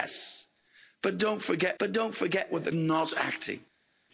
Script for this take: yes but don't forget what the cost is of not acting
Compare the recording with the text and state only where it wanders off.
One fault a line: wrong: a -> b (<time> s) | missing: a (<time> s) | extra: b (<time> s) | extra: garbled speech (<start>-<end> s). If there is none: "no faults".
wrong: what the cost is of -> but don't forget what the (1.8 s)